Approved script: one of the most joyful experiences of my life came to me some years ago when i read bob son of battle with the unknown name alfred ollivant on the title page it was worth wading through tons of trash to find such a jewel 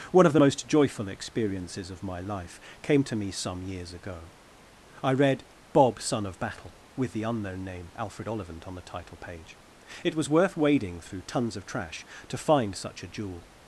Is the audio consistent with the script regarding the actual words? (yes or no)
no